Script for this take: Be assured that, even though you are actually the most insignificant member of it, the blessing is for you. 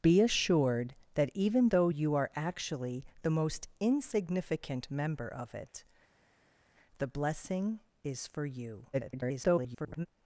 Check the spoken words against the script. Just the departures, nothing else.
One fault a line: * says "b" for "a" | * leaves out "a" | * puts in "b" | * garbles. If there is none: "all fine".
* garbles